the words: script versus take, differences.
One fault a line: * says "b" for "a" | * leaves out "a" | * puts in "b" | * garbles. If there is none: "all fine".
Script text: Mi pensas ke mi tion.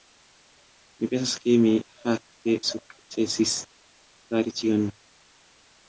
* puts in "fakte sukcesis fari"